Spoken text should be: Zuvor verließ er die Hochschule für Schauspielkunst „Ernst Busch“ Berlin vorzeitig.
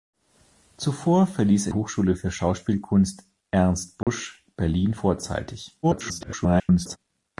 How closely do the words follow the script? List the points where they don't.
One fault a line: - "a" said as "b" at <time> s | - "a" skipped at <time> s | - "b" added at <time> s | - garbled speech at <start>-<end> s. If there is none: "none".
- "die" skipped at 1.7 s
- garbled speech at 5.8-7.0 s